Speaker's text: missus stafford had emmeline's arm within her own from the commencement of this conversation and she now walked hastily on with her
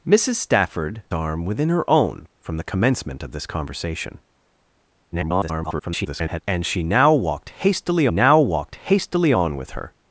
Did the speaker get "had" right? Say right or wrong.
wrong